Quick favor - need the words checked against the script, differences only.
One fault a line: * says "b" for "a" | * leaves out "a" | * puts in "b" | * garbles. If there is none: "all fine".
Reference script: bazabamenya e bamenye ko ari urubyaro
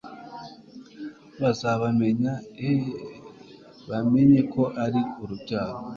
all fine